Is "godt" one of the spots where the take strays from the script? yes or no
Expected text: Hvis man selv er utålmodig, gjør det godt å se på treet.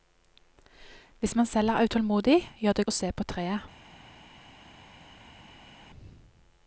yes